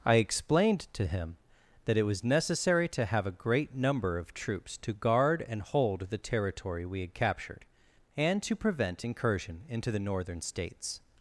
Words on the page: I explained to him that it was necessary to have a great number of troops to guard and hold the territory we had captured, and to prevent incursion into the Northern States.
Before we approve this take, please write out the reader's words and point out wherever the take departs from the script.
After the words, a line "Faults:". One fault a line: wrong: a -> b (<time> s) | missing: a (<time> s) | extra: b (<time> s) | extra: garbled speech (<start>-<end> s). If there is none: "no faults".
I explained to him that it was necessary to have a great number of troops to guard and hold the territory we had captured, and to prevent incursion into the Northern States.
Faults:
no faults